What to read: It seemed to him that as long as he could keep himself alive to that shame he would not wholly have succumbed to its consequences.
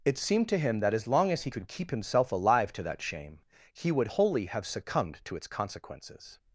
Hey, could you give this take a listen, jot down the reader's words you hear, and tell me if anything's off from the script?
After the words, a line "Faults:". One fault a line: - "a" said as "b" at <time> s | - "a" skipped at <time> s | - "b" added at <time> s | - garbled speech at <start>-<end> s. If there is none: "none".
It seemed to him that as long as he could keep himself alive to that shame he would wholly have succumbed to its consequences.
Faults:
- "not" skipped at 4.1 s